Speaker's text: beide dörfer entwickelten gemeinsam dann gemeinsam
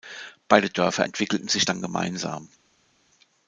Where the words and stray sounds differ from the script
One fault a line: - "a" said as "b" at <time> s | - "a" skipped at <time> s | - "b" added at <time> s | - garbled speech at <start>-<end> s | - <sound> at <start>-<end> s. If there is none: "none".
- "gemeinsam" said as "sich" at 1.5 s